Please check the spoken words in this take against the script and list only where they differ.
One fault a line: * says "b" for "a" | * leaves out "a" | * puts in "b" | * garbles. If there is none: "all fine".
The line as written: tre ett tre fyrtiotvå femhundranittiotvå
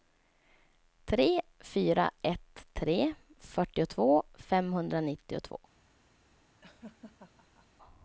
* puts in "fyra"